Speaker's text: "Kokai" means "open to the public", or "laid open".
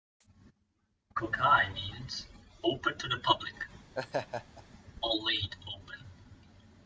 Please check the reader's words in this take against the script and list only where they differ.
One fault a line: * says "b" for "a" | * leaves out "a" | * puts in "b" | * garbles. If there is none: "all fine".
all fine